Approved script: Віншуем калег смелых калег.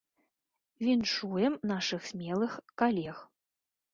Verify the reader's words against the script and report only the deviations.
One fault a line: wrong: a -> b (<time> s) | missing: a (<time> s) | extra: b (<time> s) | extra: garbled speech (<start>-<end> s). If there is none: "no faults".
wrong: калег -> нашых (1.7 s)